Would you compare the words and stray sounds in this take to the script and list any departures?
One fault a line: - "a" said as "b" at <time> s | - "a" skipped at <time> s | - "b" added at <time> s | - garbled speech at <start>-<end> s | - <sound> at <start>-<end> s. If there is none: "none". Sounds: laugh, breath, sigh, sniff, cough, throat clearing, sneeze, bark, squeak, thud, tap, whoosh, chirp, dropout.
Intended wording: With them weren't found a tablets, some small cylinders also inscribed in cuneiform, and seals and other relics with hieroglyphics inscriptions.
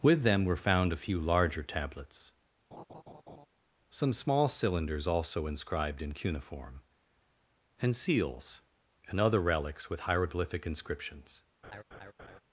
- "weren't" said as "were" at 0.5 s
- "few larger" added at 1.0 s
- laugh at 2.7-3.5 s
- "hieroglyphics" said as "hieroglyphic" at 10.0 s
- laugh at 11.6-12.4 s